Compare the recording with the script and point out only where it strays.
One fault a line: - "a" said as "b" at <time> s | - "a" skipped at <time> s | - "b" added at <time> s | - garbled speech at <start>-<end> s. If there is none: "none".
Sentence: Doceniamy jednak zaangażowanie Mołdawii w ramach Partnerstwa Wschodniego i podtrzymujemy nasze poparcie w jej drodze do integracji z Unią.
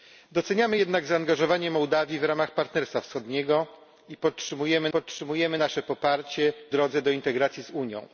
- "podtrzymujemy" added at 4.9 s
- "jej" skipped at 6.7 s